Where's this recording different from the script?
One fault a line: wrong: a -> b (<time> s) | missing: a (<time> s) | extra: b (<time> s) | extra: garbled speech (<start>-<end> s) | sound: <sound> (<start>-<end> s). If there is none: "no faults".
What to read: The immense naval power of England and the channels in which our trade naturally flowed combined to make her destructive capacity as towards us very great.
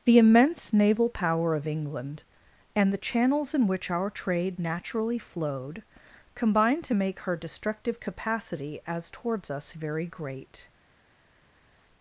no faults